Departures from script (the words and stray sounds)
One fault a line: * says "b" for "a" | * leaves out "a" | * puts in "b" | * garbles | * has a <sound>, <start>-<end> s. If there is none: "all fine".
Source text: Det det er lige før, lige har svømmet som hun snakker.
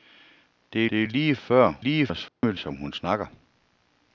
* has a dropout, 2.3-2.4 s